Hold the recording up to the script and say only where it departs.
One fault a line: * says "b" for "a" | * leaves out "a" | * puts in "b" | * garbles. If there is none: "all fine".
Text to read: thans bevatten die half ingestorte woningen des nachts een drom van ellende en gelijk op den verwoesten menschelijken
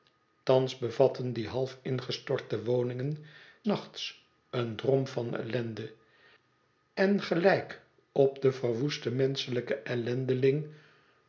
* leaves out "des"